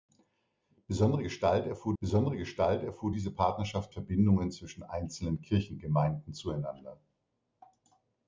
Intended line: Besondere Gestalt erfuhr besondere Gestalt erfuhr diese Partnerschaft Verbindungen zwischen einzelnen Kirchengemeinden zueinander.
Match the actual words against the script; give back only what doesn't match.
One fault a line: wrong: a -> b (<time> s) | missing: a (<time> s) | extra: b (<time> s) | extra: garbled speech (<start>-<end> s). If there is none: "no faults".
no faults